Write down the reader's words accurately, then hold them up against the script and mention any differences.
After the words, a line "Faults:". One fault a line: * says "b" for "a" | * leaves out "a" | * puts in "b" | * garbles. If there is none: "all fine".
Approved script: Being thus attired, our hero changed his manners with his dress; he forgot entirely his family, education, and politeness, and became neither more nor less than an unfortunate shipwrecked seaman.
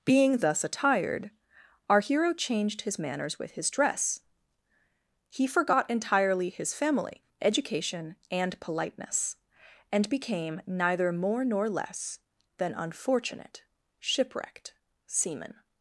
Being thus attired, our hero changed his manners with his dress; he forgot entirely his family, education, and politeness, and became neither more nor less than unfortunate shipwrecked seaman.
Faults:
* leaves out "an"